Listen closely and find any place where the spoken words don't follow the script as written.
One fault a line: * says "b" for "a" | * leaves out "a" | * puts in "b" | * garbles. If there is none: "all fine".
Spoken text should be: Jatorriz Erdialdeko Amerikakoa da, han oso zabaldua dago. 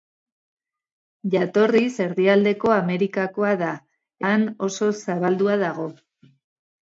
all fine